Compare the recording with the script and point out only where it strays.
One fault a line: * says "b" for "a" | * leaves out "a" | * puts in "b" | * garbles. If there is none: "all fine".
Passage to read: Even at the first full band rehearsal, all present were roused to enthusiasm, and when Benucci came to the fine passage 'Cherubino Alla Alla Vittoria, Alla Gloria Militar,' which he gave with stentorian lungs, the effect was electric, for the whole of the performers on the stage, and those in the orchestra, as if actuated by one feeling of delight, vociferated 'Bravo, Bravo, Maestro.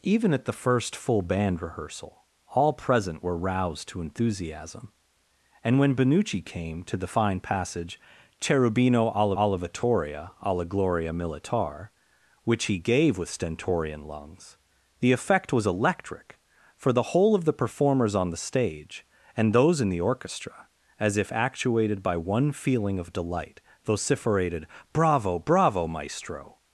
all fine